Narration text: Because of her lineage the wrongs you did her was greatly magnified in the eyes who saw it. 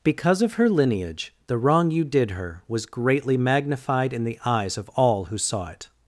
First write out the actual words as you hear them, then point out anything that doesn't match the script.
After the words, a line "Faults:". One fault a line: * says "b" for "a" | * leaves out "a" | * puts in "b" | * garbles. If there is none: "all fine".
Because of her lineage the wrong you did her was greatly magnified in the eyes of all who saw it.
Faults:
* says "wrong" for "wrongs"
* puts in "of all"